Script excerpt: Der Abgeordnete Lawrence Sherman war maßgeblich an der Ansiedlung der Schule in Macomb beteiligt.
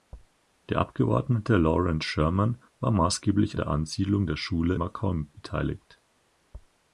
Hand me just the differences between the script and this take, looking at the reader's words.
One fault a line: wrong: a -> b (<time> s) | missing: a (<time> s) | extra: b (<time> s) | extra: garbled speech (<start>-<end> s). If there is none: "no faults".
missing: an (3.6 s)
missing: in (4.7 s)